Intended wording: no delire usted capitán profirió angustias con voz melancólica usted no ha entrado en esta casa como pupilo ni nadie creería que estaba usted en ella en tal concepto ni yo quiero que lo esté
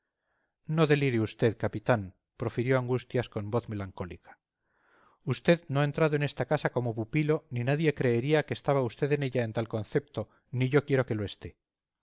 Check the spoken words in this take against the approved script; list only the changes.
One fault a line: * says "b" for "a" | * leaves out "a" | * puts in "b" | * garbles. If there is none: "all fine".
all fine